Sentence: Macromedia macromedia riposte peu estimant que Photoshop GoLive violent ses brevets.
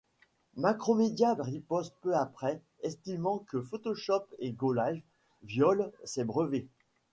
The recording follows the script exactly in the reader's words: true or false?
false